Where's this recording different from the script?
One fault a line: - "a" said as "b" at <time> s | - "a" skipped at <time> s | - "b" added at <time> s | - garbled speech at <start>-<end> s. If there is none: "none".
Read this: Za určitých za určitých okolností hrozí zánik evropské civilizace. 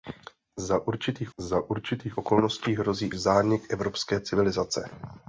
none